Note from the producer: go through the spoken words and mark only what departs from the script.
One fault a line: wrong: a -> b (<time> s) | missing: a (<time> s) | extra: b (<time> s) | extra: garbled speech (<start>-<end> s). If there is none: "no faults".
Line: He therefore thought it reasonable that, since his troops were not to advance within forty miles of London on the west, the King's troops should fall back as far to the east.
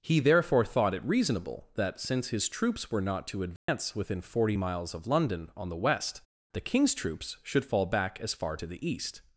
no faults